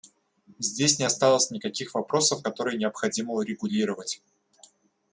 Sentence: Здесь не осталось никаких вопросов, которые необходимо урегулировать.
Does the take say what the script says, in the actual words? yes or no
yes